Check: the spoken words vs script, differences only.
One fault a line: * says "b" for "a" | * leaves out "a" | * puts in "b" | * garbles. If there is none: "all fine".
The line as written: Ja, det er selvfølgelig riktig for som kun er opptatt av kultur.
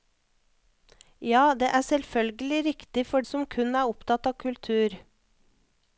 all fine